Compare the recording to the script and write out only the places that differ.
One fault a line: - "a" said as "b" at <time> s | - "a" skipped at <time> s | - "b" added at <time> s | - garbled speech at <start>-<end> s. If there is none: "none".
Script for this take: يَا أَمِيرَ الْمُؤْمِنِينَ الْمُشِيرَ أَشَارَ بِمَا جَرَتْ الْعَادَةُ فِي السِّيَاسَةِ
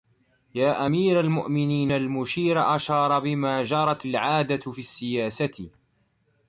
none